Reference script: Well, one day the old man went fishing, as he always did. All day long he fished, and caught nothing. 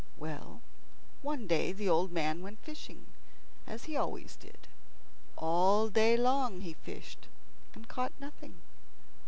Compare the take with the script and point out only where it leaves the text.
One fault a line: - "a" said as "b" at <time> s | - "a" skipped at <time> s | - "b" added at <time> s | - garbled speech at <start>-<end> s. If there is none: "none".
none